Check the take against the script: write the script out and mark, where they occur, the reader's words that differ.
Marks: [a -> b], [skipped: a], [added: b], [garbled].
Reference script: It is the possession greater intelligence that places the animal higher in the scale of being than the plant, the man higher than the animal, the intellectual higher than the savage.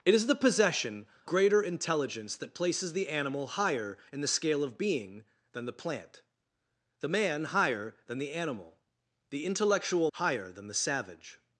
It is the possession greater intelligence that places the animal higher in the scale of being than the plant, the man higher than the animal, the intellectual higher than the savage.